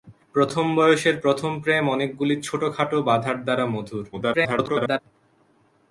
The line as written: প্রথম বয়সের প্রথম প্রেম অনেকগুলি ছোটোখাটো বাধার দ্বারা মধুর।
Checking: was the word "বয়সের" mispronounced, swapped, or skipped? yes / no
no